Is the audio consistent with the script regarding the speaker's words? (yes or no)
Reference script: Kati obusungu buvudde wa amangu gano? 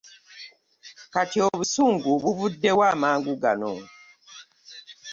yes